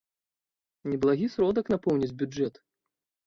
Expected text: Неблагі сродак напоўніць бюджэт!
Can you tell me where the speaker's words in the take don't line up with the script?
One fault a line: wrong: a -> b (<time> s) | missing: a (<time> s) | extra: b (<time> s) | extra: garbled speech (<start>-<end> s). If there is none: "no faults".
no faults